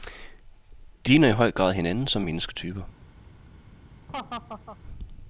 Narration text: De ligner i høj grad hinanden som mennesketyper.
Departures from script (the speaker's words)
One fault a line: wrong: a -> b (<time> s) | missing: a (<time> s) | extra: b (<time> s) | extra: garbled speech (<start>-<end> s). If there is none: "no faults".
no faults